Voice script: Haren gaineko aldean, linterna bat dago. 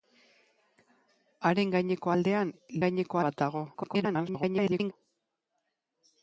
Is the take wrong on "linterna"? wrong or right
wrong